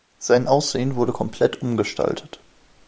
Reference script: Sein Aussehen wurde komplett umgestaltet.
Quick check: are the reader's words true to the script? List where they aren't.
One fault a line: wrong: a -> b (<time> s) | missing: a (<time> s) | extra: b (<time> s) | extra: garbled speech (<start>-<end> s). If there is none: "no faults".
no faults